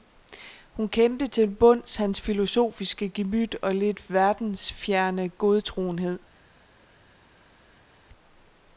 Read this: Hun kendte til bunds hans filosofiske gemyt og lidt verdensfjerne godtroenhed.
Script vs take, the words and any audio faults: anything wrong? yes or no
no